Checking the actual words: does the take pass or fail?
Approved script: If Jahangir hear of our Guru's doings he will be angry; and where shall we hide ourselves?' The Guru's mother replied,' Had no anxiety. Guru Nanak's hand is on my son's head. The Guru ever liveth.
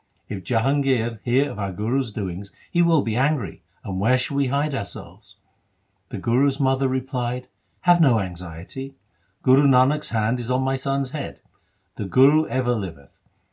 fail